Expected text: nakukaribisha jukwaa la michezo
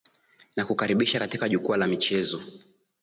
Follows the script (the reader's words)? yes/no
no